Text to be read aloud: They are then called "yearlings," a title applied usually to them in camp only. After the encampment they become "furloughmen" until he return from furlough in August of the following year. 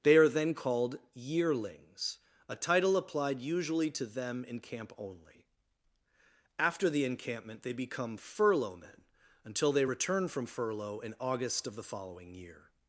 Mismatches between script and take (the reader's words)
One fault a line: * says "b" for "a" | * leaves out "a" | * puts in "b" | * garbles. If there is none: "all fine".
* says "they" for "he"